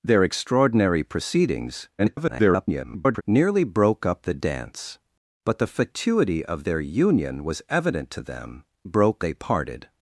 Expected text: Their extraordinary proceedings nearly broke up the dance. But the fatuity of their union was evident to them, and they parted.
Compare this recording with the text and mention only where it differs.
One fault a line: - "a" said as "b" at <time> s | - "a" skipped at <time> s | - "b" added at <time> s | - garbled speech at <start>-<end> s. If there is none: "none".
- garbled speech at 2.0-3.2 s
- "and" said as "broke" at 8.8 s